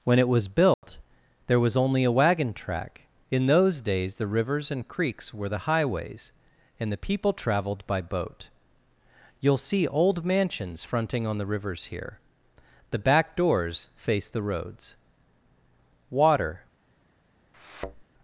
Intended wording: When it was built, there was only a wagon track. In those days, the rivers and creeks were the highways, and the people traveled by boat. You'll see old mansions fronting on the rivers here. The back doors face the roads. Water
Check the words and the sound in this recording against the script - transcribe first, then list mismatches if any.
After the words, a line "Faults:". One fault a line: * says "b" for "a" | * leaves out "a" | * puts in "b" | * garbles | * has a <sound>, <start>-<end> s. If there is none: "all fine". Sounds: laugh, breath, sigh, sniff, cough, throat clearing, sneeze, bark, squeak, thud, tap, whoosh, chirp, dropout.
When it was built, there was only a wagon track. In those days, the rivers and creeks were the highways, and the people traveled by boat. You'll see old mansions fronting on the rivers here. The back doors face the roads. Water
Faults:
* has a dropout, 0.7-0.8 s
* has a thud, 17.5-18.0 s